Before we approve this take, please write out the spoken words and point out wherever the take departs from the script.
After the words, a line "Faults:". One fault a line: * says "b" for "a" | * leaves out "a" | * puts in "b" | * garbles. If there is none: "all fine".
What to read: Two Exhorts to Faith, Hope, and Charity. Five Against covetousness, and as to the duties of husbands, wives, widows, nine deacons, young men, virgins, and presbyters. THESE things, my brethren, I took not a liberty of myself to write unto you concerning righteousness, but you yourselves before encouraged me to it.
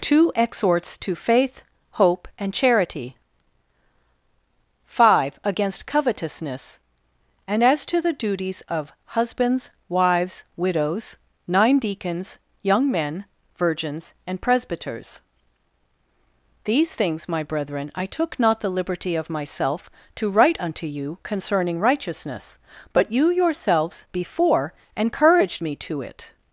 Two Exhorts to Faith, Hope, and Charity. Five Against covetousness, and as to the duties of husbands, wives, widows, nine deacons, young men, virgins, and presbyters. THESE things, my brethren, I took not the liberty of myself to write unto you concerning righteousness, but you yourselves before encouraged me to it.
Faults:
* says "the" for "a"